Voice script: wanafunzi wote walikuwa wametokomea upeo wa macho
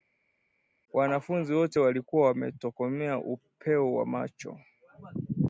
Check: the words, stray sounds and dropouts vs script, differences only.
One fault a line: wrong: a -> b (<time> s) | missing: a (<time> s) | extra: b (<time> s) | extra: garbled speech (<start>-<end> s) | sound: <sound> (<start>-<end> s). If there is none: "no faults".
no faults